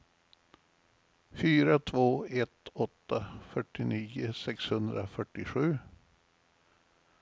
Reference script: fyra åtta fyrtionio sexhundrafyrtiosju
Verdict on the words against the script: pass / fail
fail